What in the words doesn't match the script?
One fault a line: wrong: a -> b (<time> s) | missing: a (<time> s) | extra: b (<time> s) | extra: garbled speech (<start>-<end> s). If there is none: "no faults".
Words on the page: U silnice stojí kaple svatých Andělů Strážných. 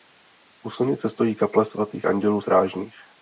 no faults